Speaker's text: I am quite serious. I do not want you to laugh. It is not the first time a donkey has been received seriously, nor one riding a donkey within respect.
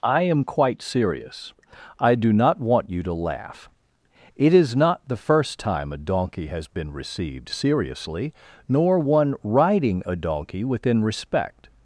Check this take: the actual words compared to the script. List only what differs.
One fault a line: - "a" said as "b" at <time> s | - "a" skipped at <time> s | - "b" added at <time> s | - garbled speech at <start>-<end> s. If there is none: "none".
none